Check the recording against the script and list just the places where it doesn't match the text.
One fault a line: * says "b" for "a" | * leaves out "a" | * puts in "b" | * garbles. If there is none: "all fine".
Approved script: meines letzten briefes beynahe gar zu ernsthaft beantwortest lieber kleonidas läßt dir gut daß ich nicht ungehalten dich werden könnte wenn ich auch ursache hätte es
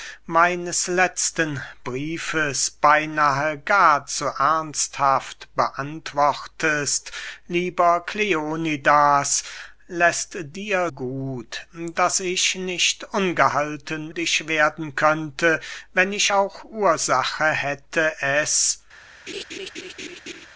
all fine